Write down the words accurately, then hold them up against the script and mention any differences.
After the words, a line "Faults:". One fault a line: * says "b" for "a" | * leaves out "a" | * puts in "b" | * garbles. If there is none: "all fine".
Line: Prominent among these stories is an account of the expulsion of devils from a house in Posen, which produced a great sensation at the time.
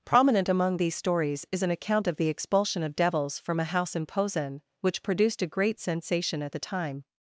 Prominent among these stories is an account of the expulsion of devils from a house in Posen, which produced a great sensation at the time.
Faults:
all fine